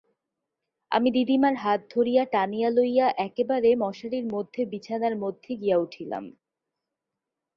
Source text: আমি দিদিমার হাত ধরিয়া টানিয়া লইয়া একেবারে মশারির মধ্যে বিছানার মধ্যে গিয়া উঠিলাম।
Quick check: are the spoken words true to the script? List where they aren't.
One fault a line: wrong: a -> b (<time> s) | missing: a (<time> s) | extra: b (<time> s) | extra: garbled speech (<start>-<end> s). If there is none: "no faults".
no faults